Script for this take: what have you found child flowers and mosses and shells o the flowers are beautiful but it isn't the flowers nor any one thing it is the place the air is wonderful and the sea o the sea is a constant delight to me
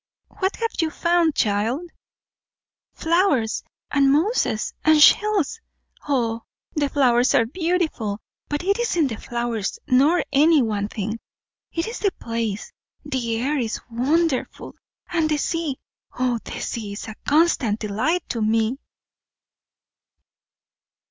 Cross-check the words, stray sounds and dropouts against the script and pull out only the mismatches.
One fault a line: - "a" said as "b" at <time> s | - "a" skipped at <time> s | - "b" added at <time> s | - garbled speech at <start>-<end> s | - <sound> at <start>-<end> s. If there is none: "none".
none